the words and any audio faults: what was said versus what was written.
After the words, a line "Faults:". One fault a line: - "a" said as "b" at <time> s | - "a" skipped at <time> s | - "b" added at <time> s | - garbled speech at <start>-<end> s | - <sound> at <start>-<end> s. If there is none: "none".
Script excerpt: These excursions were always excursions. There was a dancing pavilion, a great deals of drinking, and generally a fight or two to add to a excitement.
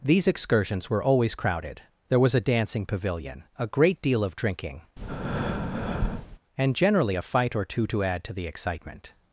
These excursions were always crowded. There was a dancing pavilion, a great deal of drinking, and generally a fight or two to add to the excitement.
Faults:
- "excursions" said as "crowded" at 1.4 s
- "deals" said as "deal" at 4.0 s
- breath at 5.0-6.4 s
- "a" said as "the" at 8.3 s